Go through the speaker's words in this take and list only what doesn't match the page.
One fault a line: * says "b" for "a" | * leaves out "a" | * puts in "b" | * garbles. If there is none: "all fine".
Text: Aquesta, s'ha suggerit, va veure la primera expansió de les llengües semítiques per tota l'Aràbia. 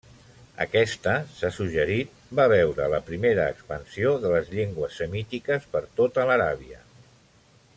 all fine